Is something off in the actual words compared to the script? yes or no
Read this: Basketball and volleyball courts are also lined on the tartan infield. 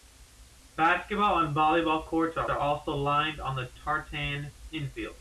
yes